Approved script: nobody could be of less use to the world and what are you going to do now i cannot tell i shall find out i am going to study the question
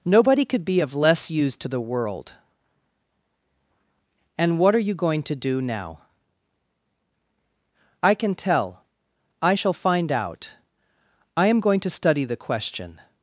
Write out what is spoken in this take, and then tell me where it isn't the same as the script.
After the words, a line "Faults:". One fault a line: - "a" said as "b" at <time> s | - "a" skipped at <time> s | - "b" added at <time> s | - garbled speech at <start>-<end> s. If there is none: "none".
nobody could be of less use to the world and what are you going to do now i can tell i shall find out i am going to study the question
Faults:
- "cannot" said as "can" at 8.2 s